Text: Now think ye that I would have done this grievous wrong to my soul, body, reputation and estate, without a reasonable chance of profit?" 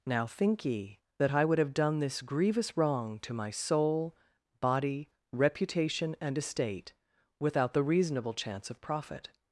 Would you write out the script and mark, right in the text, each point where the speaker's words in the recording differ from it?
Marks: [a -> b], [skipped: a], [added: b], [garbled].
Now think ye that I would have done this grievous wrong to my soul, body, reputation and estate, without [a -> the] reasonable chance of profit?"